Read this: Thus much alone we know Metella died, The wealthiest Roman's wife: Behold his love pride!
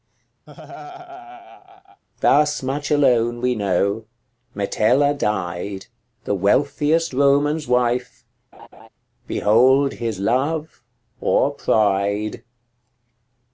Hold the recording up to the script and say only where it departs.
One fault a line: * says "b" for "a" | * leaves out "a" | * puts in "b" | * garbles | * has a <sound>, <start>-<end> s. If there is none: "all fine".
* has a laugh, 0.5-2.0 s
* has a laugh, 8.5-8.9 s
* puts in "or"